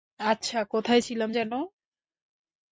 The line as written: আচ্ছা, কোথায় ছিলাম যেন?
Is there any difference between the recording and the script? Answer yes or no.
no